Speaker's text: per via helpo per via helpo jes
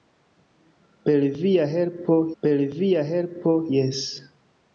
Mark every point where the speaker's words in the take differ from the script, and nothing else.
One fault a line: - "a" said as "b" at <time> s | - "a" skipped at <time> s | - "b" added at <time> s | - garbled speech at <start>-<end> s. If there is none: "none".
none